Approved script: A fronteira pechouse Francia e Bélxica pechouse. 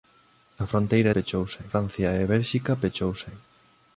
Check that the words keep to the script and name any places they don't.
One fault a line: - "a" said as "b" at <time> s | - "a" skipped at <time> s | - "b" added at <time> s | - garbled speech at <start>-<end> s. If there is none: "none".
none